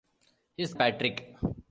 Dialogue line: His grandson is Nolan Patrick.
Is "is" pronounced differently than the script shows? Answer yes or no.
yes